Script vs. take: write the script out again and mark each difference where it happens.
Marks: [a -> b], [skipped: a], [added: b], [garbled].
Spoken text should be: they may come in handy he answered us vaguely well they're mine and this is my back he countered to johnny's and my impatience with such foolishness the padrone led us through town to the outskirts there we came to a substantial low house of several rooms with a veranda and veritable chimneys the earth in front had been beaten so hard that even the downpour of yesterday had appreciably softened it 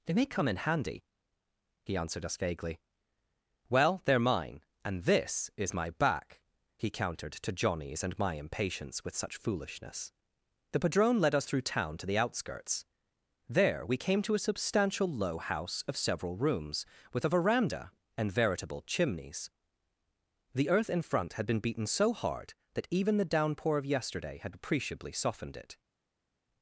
they may come in handy he answered us vaguely well they're mine and this is my back he countered to johnny's and my impatience with such foolishness the padrone led us through town to the outskirts there we came to a substantial low house of several rooms with a veranda and veritable chimneys the earth in front had been beaten so hard that even the downpour of yesterday had appreciably softened it